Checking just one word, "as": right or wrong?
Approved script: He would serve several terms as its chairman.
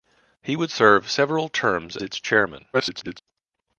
wrong